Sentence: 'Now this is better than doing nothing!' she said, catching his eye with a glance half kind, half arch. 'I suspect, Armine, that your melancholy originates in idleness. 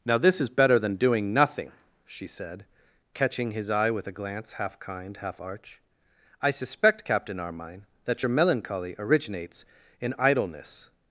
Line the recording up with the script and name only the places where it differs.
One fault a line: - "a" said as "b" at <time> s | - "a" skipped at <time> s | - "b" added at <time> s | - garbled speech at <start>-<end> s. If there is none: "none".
- "Captain" added at 7.0 s